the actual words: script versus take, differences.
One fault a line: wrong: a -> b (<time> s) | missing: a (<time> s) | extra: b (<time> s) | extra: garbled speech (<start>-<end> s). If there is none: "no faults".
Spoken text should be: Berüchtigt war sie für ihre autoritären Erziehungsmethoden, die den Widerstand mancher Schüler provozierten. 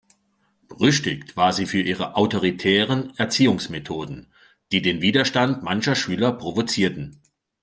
no faults